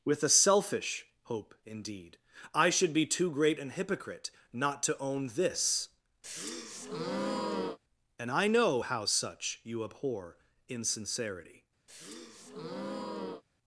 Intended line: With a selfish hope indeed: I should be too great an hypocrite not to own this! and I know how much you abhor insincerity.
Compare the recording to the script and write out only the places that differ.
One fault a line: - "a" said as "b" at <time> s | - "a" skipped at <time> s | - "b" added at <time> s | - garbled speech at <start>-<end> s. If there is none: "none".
- "much" said as "such" at 9.1 s